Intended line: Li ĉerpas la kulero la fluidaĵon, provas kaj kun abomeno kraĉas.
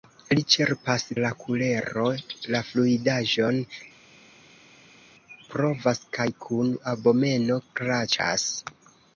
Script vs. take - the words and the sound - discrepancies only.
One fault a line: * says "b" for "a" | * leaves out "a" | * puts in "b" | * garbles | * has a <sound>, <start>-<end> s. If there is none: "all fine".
all fine